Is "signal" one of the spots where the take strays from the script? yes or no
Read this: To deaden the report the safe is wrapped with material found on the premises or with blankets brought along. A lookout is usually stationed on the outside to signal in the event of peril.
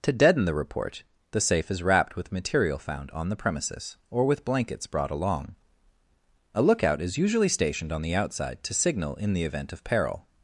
no